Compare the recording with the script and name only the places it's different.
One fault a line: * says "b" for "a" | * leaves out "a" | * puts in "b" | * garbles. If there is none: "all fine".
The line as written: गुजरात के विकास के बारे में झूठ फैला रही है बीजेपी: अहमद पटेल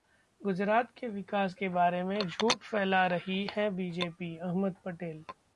all fine